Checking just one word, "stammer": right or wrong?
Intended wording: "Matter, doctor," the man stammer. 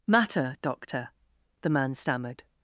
wrong